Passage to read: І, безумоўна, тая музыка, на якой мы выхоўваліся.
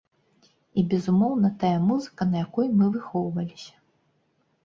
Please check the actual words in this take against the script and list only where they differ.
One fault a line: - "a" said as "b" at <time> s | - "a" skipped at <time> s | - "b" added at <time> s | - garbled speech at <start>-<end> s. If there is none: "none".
none